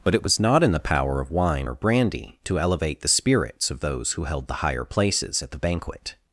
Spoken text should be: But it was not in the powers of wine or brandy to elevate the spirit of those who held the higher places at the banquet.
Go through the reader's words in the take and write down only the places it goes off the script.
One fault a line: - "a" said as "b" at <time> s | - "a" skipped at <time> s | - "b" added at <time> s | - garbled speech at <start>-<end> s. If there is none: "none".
- "powers" said as "power" at 0.8 s
- "spirit" said as "spirits" at 3.1 s